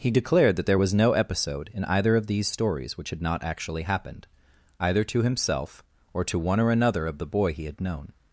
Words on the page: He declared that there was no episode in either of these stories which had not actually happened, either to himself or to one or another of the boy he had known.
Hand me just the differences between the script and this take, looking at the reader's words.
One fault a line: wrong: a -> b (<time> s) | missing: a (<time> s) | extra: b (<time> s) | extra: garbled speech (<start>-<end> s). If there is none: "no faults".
no faults